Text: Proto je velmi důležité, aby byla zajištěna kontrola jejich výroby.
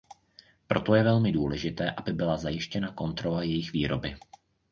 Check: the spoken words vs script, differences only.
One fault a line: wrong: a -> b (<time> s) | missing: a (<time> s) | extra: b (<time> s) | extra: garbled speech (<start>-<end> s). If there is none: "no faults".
no faults